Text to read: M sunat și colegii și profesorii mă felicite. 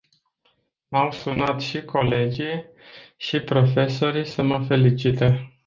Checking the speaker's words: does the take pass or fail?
fail